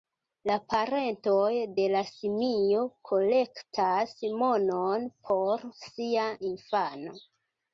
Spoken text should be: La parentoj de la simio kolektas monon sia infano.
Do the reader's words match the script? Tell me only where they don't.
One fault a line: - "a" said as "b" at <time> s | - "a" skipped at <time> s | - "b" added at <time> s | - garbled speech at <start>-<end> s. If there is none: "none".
- "por" added at 5.3 s